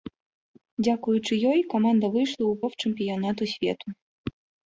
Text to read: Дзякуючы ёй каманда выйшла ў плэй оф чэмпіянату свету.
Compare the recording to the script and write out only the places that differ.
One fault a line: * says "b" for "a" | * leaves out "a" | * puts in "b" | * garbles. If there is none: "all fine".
* leaves out "плэй"